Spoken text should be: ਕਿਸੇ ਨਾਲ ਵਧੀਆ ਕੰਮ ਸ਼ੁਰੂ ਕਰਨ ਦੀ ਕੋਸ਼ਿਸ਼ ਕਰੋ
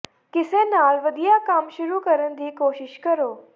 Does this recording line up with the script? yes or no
yes